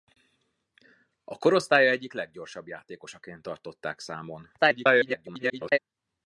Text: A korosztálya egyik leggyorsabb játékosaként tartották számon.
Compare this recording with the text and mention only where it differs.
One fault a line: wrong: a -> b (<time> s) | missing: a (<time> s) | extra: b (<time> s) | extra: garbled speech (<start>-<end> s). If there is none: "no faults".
extra: garbled speech (4.6-5.8 s)